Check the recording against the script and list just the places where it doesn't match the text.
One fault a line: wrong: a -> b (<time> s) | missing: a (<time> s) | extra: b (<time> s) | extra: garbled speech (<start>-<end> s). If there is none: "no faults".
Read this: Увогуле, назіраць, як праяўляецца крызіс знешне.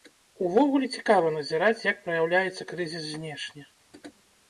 extra: цікава (1.0 s)